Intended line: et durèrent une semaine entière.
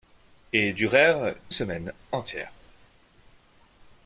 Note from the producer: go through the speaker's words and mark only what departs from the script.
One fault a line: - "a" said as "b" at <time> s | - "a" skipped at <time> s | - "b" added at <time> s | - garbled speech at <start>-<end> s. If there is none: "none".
- "une" skipped at 1.4 s